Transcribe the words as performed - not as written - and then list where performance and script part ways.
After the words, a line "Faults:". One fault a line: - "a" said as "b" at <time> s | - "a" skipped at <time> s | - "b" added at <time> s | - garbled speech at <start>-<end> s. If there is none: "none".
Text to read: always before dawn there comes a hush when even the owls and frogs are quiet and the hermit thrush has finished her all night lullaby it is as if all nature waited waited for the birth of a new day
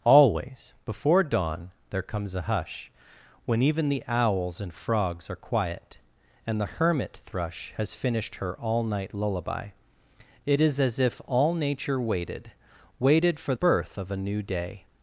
always before dawn there comes a hush when even the owls and frogs are quiet and the hermit thrush has finished her all night lullaby it is as if all nature waited waited for birth of a new day
Faults:
- "the" skipped at 13.5 s